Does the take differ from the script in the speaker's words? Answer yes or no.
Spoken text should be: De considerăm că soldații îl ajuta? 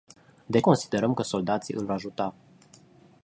no